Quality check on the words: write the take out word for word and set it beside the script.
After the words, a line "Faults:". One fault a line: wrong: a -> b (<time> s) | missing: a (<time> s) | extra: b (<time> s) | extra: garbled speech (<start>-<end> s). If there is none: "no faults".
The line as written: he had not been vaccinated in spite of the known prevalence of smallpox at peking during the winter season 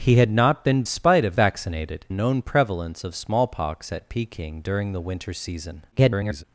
he had not been spite of vaccinated known prevalence of smallpox at peking during the winter season [garbled]
Faults:
missing: vaccinated in (0.8 s)
wrong: the -> vaccinated (1.3 s)
extra: garbled speech (5.9-6.4 s)